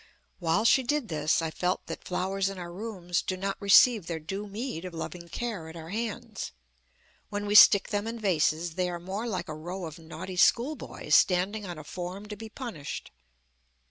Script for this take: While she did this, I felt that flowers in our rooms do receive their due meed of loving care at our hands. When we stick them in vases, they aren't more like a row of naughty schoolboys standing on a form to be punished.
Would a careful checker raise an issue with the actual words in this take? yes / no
yes